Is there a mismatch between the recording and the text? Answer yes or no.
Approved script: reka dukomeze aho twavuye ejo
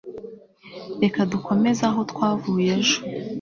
no